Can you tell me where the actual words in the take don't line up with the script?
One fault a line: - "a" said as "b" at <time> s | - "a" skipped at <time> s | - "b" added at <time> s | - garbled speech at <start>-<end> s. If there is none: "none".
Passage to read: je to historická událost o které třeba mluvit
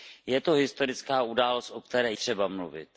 none